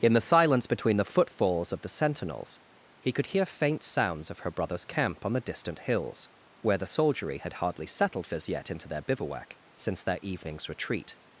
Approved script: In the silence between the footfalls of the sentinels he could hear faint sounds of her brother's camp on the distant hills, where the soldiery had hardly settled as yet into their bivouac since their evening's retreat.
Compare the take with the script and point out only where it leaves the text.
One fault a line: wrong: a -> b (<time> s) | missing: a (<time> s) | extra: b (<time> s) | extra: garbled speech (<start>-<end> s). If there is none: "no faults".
no faults